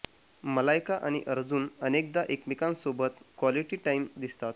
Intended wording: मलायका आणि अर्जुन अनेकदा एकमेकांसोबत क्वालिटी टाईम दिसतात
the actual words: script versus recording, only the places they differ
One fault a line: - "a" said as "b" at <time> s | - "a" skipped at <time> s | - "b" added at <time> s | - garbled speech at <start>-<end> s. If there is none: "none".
none